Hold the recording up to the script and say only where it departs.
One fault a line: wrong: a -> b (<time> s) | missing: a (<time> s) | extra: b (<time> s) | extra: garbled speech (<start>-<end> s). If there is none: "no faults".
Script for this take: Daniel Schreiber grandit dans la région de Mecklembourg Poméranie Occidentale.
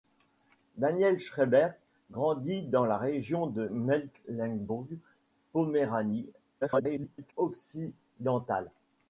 extra: garbled speech (6.6-7.3 s)